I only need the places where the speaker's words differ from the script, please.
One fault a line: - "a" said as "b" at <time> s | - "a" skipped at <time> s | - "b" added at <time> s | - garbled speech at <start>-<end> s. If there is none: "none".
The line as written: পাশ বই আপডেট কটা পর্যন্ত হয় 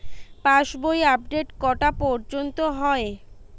none